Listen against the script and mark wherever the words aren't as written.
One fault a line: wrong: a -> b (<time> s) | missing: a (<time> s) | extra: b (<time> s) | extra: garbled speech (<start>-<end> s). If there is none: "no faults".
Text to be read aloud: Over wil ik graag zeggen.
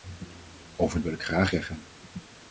no faults